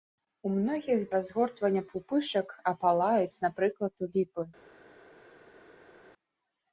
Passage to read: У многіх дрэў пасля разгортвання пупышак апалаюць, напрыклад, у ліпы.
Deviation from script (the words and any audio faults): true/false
true